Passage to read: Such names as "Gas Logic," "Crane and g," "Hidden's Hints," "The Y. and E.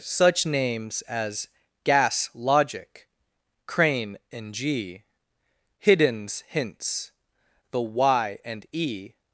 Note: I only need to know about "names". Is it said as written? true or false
true